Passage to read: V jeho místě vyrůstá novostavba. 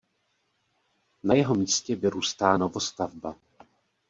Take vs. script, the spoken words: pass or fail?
fail